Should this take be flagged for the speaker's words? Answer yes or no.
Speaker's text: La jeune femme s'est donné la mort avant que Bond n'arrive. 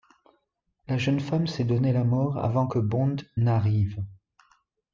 no